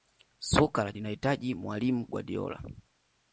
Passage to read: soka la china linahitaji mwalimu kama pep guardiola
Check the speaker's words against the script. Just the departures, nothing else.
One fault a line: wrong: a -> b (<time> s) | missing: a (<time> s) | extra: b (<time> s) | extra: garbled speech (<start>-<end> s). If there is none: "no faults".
missing: china (0.9 s)
missing: kama pep (2.1 s)